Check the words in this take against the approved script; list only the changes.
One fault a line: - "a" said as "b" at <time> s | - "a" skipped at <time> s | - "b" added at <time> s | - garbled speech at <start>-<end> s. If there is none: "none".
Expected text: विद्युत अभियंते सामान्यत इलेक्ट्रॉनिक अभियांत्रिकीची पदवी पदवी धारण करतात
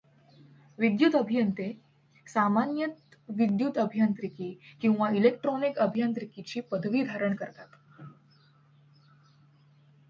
- "विद्युत अभियांत्रिकी किंवा" added at 3.3 s
- "पदवी" skipped at 7.0 s